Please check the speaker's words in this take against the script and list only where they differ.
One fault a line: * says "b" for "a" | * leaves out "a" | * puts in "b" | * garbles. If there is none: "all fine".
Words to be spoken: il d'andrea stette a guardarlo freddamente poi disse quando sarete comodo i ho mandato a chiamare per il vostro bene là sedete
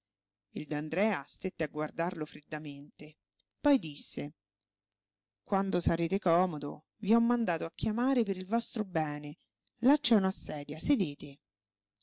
* puts in "c'è una sedia"